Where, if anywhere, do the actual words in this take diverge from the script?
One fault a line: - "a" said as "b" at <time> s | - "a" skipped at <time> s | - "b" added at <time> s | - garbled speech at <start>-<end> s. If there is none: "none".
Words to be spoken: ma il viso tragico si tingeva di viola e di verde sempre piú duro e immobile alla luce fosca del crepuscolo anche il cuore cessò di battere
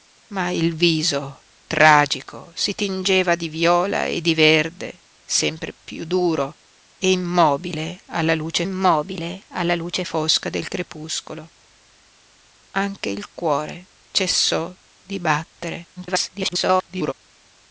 - "immobile alla luce" added at 8.6 s
- garbled speech at 16.0-17.1 s